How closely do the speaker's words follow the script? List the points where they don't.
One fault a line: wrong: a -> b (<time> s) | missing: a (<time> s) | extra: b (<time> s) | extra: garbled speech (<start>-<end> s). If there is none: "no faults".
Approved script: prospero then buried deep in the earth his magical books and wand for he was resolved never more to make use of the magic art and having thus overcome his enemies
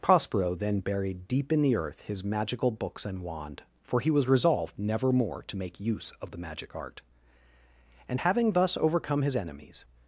no faults